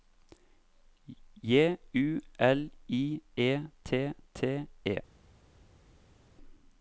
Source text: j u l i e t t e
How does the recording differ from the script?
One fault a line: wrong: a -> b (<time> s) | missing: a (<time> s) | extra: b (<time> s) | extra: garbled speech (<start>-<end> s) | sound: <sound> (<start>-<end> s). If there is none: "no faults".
no faults